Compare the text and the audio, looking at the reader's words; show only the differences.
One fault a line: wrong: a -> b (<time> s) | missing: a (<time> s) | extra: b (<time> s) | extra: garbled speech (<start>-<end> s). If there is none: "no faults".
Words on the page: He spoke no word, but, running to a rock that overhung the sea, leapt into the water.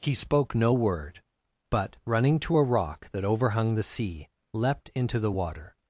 no faults